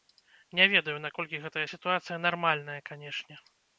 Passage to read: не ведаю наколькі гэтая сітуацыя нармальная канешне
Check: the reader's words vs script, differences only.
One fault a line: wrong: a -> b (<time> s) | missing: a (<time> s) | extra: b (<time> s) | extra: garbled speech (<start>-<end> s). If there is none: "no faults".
no faults